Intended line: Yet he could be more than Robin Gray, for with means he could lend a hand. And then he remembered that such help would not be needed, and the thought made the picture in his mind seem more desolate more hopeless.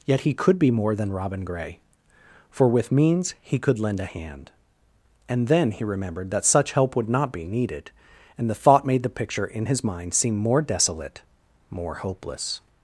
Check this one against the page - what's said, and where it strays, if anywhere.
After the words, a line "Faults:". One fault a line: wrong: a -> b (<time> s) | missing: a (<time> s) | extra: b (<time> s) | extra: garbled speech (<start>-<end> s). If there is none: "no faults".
Yet he could be more than Robin Gray, for with means he could lend a hand. And then he remembered that such help would not be needed, and the thought made the picture in his mind seem more desolate more hopeless.
Faults:
no faults